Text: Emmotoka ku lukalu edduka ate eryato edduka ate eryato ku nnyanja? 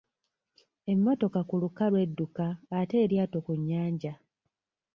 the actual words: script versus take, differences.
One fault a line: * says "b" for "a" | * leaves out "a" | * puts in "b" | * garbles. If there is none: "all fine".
* leaves out "edduka ate eryato"